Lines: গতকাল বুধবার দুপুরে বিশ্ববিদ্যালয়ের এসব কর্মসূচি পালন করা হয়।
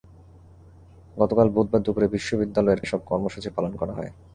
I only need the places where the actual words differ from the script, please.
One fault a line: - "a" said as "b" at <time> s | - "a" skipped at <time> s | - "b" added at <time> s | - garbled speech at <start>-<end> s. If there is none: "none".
none